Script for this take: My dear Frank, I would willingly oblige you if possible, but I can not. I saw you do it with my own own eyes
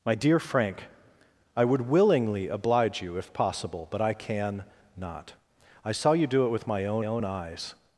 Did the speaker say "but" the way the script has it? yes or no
yes